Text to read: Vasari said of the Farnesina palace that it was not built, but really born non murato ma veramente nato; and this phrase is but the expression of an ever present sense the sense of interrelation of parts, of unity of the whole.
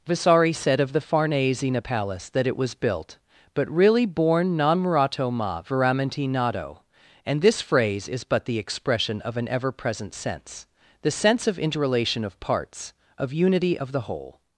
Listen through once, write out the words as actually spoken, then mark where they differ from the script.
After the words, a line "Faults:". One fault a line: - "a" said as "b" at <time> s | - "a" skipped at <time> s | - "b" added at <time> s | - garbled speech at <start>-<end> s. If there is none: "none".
Vasari said of the Farnesina palace that it was built, but really born non murato ma veramente nato; and this phrase is but the expression of an ever present sense the sense of interrelation of parts, of unity of the whole.
Faults:
- "not" skipped at 2.7 s